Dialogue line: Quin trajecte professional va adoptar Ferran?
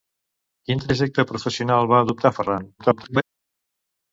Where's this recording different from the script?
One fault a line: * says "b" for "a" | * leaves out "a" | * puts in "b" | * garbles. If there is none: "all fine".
* garbles